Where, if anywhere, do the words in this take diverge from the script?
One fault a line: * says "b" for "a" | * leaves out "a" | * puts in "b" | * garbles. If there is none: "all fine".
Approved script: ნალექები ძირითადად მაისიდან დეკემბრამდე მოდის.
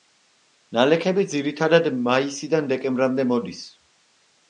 all fine